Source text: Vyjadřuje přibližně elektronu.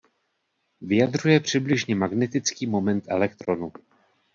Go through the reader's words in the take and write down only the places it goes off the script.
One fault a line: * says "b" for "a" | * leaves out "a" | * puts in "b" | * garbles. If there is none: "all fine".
* puts in "magnetický moment"